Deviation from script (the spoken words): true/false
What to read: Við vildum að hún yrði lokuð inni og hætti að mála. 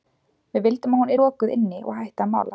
true